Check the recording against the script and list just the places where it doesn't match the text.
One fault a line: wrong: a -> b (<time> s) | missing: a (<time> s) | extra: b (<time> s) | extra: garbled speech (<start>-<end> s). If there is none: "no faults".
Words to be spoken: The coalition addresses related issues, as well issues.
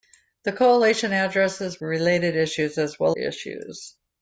no faults